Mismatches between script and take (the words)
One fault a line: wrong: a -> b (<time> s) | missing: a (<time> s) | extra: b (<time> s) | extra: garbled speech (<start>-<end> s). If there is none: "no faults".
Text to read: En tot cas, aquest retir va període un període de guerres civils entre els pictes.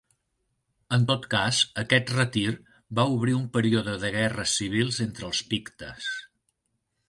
wrong: període -> obrir (3.1 s)